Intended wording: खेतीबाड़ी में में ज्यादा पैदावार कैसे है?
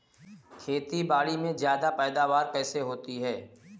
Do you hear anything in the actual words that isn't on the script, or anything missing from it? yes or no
yes